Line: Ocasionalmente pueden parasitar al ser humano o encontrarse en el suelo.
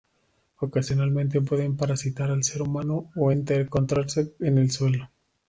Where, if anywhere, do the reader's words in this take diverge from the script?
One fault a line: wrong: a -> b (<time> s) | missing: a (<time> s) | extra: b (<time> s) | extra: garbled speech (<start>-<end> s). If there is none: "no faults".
no faults